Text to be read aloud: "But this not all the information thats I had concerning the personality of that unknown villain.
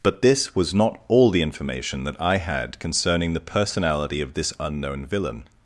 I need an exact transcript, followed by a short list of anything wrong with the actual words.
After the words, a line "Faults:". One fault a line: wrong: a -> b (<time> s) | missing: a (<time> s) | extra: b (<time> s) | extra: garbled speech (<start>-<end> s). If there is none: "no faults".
"But this was not all the information that I had concerning the personality of this unknown villain.
Faults:
extra: was (0.6 s)
wrong: thats -> that (2.0 s)
wrong: that -> this (4.3 s)